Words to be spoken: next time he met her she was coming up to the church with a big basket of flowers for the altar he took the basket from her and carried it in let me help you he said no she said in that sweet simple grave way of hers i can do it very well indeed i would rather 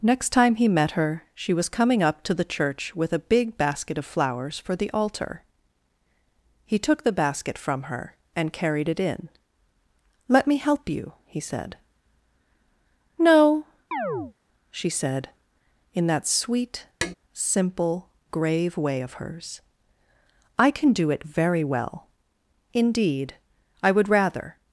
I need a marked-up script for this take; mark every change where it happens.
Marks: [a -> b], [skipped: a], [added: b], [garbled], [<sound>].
next time he met her she was coming up to the church with a big basket of flowers for the altar he took the basket from her and carried it in let me help you he said no [chirp] she said in that sweet [tap] simple grave way of hers i can do it very well indeed i would rather